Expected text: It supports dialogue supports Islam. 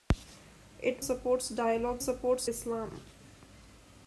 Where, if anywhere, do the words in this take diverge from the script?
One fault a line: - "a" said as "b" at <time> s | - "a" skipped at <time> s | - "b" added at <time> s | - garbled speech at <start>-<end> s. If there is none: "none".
none